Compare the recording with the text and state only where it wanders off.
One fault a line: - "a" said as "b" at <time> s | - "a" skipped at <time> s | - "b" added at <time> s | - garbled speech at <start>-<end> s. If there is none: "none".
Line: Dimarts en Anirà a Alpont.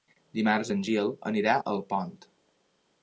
- "Gil" added at 0.9 s